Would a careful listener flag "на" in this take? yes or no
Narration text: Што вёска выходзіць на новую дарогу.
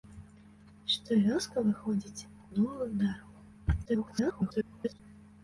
yes